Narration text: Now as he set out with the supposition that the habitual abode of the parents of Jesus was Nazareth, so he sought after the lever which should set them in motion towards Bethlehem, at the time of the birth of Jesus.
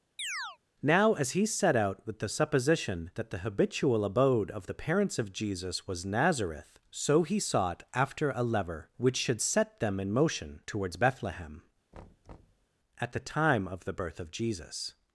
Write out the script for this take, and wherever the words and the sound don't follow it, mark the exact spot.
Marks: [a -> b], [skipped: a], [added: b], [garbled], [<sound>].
[chirp] Now as he set out with the supposition that the habitual abode of the parents of Jesus was Nazareth, so he sought after [the -> a] lever which should set them in motion towards Bethlehem, [thud] at the time of the birth of Jesus.